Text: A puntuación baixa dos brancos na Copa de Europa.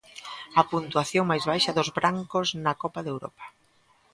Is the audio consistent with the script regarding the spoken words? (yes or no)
no